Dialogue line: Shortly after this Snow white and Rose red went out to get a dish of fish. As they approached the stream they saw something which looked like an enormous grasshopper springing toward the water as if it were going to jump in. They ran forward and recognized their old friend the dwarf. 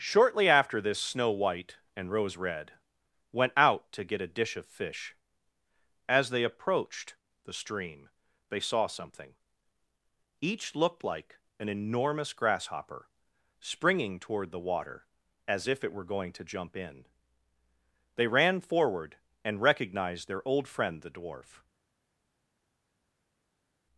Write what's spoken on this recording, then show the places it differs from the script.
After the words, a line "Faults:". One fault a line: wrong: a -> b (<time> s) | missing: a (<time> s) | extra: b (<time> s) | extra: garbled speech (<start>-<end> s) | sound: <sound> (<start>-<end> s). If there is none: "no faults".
Shortly after this Snow white and Rose red went out to get a dish of fish. As they approached the stream they saw something each looked like an enormous grasshopper springing toward the water as if it were going to jump in. They ran forward and recognized their old friend the dwarf.
Faults:
wrong: which -> each (10.4 s)